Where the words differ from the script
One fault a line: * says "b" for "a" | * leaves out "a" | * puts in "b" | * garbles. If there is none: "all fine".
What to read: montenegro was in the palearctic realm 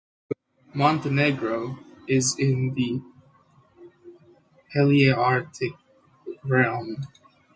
* says "is" for "was"